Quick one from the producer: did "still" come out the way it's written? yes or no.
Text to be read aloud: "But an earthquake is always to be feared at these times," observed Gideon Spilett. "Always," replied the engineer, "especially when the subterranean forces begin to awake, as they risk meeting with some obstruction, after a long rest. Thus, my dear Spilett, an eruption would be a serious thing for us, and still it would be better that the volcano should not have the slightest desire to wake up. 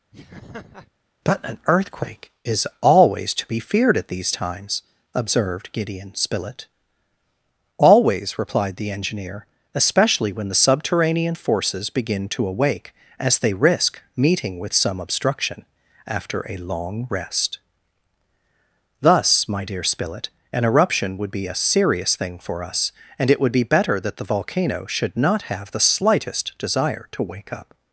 no